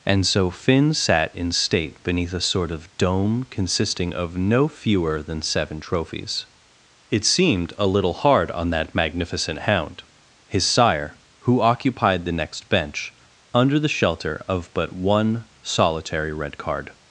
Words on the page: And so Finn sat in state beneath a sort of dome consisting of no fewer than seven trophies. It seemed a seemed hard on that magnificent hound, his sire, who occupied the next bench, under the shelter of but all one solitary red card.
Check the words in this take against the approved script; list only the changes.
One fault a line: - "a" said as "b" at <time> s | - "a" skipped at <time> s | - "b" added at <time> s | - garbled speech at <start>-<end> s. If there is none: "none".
- "seemed" said as "little" at 7.8 s
- "all" skipped at 14.9 s